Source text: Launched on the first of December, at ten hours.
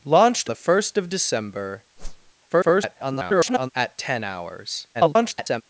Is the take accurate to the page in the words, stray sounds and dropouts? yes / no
no